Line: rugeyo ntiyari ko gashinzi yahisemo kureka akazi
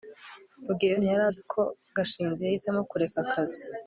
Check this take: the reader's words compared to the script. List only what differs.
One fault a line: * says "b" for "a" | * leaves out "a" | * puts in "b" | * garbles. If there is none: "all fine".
* puts in "azi"